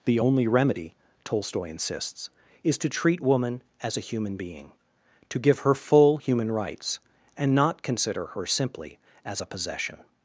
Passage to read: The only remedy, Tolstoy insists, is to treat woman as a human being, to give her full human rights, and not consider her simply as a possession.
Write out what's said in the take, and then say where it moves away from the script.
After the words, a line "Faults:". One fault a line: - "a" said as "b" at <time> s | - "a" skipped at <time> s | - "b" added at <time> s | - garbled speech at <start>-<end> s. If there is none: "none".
The only remedy, Tolstoy insists, is to treat woman as a human being, to give her full human rights, and not consider her simply as a possession.
Faults:
none